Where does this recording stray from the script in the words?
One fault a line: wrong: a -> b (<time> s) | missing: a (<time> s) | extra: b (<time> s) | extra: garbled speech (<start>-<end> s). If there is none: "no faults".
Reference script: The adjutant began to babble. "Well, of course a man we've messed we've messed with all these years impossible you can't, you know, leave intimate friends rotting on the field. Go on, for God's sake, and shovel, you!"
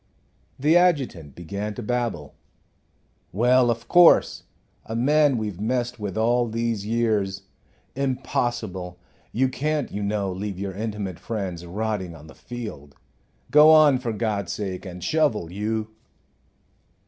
missing: we've messed (6.0 s)
extra: your (10.6 s)